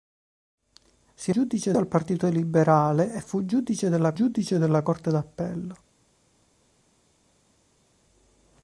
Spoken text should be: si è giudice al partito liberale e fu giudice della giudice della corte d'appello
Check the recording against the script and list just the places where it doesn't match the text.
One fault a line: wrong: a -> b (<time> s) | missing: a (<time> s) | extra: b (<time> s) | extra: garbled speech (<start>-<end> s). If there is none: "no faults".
no faults